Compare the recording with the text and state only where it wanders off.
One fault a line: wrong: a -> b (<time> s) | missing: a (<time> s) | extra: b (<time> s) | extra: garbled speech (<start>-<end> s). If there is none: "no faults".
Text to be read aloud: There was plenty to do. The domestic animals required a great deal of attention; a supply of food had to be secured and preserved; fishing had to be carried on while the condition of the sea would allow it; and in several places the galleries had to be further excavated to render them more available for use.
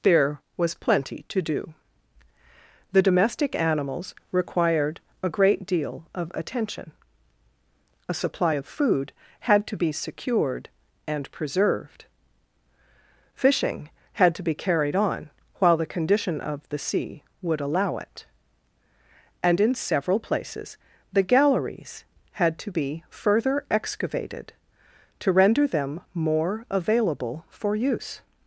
no faults